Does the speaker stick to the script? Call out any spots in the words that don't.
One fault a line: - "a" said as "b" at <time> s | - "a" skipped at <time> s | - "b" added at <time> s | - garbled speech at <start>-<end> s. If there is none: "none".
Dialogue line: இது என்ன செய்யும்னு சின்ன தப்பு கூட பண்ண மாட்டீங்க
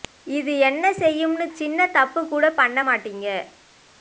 none